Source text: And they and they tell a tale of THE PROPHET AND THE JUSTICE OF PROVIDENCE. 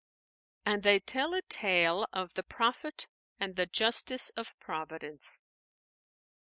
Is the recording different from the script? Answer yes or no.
yes